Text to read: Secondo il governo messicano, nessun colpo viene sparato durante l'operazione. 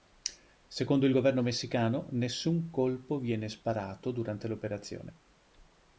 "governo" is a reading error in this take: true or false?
false